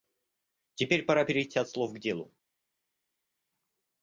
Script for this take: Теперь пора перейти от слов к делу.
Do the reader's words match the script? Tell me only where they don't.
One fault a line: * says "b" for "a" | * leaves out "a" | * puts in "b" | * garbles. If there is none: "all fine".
all fine